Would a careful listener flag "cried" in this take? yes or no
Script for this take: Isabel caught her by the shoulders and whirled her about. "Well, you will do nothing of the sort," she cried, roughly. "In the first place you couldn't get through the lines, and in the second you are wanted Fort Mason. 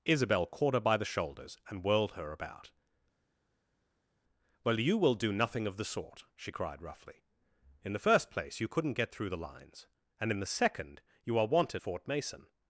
no